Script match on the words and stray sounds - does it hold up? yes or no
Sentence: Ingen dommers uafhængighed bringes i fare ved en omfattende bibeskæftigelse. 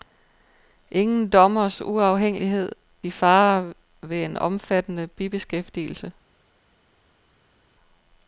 no